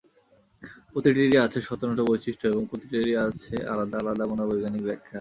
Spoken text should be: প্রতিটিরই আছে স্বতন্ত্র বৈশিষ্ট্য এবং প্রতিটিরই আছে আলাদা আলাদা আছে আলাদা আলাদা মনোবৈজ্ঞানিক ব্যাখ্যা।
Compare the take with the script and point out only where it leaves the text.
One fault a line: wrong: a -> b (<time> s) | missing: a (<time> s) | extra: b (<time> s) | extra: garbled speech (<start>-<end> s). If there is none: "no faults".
missing: আছে আলাদা আলাদা (4.2 s)